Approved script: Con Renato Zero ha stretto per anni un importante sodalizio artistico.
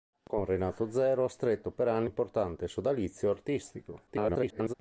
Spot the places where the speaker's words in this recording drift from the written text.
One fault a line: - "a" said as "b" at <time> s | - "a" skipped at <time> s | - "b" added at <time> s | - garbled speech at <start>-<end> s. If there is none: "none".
- "un" skipped at 2.1 s
- garbled speech at 4.1-4.7 s